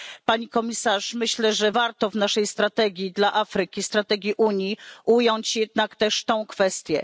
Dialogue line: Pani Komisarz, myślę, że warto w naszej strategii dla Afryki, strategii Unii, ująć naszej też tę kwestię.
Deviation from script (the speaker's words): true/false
true